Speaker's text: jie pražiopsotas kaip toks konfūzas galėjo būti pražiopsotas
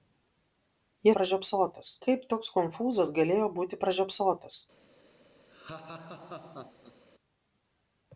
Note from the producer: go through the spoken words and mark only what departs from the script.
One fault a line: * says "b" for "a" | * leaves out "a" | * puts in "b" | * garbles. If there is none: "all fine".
all fine